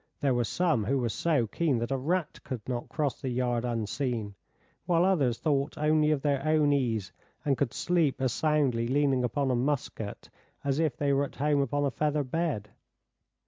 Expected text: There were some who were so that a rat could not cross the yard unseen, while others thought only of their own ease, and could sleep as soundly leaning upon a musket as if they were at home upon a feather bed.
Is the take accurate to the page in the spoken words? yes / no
no